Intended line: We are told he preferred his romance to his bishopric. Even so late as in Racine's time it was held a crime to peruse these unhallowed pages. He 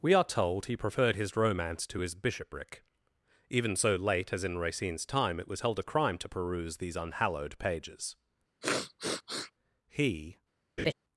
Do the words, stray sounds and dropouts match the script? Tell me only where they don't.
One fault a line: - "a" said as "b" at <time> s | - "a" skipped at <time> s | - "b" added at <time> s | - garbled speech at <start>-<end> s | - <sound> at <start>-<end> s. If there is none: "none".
- sniff at 8.6-9.5 s
- laugh at 10.8-10.9 s